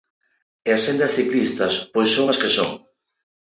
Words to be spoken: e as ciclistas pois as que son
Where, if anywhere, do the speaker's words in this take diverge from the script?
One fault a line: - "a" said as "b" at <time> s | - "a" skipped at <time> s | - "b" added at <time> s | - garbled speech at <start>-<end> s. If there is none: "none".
- "sendas" added at 0.8 s
- "son" added at 2.1 s